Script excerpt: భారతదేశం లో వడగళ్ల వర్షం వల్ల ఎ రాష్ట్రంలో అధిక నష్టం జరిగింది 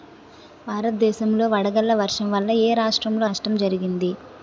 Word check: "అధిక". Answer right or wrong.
wrong